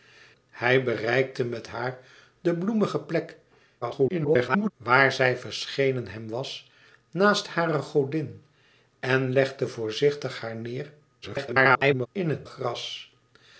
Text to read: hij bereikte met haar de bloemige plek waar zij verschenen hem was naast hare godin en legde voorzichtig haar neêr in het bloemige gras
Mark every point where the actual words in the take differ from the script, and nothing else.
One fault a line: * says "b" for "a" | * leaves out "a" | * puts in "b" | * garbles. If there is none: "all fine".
* garbles
* garbles
* leaves out "bloemige"